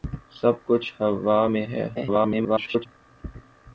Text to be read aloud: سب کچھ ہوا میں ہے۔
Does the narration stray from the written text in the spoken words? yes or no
yes